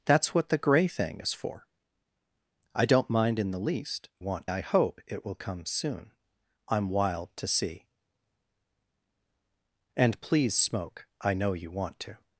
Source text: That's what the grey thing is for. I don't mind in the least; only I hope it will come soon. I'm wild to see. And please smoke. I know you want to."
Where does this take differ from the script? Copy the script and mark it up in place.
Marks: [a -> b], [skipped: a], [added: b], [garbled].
That's what the grey thing is for. I don't mind in the least; [only -> want] I hope it will come soon. I'm wild to see. And please smoke. I know you want to."